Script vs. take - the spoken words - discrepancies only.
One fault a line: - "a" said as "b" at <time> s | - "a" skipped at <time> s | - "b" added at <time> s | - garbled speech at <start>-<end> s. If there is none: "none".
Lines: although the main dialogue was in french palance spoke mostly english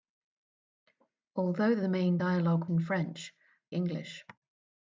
- "was" skipped at 2.7 s
- "palance spoke mostly" skipped at 3.3 s